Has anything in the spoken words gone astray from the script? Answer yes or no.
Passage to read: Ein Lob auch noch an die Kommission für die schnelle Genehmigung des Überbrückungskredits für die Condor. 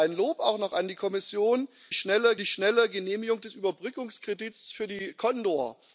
yes